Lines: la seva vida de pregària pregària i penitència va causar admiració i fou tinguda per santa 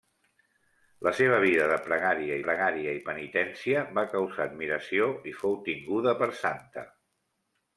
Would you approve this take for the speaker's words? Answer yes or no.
yes